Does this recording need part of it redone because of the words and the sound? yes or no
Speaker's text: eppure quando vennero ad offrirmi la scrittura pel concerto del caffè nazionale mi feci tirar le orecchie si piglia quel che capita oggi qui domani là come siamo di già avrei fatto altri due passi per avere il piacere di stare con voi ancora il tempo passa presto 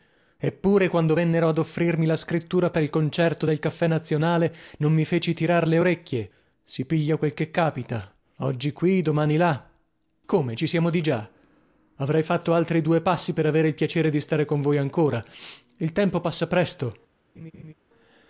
yes